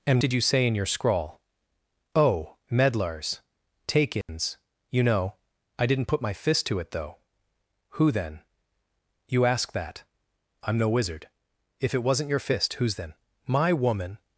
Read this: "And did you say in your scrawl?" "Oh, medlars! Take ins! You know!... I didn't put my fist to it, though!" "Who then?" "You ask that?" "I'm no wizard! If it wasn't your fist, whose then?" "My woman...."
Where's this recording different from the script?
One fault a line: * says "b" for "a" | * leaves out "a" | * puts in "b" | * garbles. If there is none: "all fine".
all fine